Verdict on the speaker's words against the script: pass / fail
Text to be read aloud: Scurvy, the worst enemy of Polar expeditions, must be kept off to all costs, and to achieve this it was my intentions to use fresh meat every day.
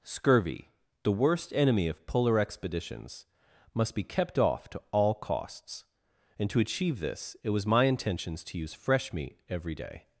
pass